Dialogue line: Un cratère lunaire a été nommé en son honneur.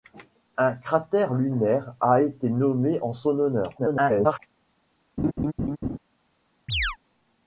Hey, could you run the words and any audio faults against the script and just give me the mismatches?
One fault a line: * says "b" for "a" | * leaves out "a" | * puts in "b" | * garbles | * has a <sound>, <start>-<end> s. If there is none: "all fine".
* garbles
* has a laugh, 5.2-6.0 s
* has a chirp, 6.7-7.0 s